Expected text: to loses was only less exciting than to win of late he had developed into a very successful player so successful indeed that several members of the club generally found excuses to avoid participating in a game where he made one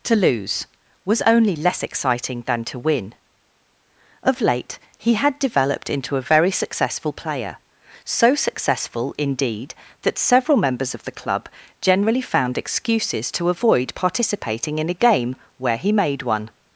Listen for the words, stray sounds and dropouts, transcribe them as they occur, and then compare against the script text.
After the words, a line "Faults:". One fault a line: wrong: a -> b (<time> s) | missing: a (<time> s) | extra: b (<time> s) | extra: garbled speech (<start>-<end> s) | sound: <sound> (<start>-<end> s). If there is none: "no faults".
to lose was only less exciting than to win of late he had developed into a very successful player so successful indeed that several members of the club generally found excuses to avoid participating in a game where he made one
Faults:
wrong: loses -> lose (0.1 s)